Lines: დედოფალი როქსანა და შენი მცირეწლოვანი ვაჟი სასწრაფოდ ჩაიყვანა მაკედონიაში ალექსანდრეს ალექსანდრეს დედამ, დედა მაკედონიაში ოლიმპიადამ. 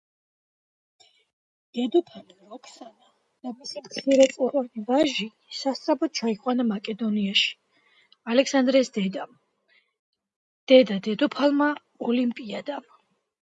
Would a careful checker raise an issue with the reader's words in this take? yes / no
yes